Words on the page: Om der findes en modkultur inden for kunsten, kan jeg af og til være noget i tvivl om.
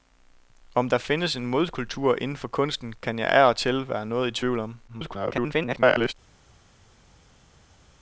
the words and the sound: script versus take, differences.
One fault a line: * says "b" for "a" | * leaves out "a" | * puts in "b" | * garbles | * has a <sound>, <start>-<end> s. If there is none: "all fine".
* garbles